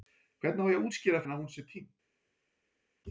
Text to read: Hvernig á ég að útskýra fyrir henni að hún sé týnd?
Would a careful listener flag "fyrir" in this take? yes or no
yes